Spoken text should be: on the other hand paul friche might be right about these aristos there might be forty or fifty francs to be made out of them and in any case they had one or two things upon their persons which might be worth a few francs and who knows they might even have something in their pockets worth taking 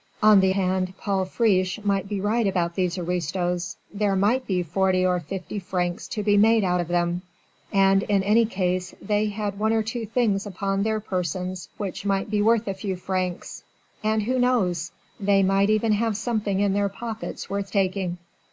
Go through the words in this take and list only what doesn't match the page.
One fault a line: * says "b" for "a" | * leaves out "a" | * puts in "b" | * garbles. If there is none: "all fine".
* leaves out "other"